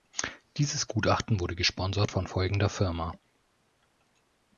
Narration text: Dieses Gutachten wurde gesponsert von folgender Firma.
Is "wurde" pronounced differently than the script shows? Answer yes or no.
no